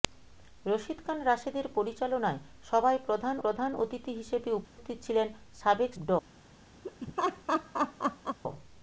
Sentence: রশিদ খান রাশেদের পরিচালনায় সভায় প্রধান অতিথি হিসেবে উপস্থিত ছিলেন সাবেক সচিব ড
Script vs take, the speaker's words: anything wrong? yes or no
yes